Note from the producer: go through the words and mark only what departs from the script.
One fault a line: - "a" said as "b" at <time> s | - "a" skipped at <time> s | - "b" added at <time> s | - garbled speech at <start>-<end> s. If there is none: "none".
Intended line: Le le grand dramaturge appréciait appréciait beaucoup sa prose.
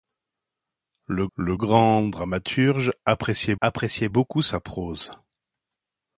none